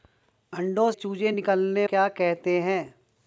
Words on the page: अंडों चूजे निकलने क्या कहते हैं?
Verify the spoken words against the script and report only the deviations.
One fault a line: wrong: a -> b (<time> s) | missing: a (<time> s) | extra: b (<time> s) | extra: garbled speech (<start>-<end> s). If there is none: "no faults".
no faults